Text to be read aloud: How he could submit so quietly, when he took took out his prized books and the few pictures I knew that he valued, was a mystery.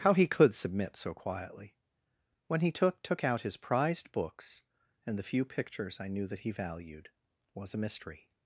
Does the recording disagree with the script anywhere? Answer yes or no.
no